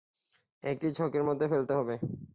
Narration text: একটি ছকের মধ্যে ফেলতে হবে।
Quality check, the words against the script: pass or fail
pass